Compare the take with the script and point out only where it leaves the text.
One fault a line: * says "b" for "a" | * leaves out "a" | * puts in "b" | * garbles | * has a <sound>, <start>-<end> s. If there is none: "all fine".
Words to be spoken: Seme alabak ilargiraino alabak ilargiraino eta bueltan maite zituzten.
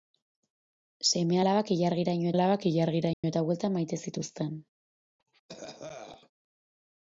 * has a dropout, 3.1-3.2 s
* has a cough, 5.2-6.3 s